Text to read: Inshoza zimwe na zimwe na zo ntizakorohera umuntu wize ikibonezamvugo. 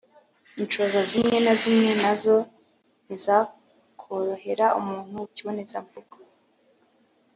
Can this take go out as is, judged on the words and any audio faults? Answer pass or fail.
fail